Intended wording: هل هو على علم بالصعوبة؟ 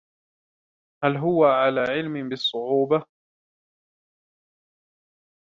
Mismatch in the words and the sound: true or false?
false